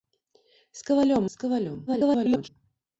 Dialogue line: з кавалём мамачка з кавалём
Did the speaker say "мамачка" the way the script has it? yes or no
no